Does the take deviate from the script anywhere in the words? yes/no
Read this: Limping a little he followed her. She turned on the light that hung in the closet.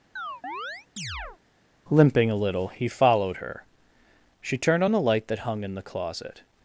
no